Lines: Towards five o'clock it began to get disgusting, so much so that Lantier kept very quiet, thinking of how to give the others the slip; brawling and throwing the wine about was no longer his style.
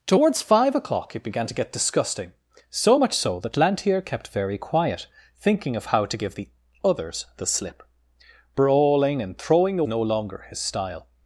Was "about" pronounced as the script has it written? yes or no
no